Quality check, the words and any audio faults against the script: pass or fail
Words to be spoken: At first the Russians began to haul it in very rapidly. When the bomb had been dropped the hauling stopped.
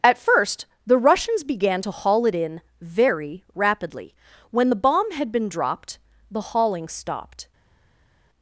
pass